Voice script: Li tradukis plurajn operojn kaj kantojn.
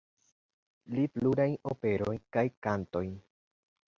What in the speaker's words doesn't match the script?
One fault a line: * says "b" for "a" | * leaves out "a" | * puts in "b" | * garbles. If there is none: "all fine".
* leaves out "tradukis"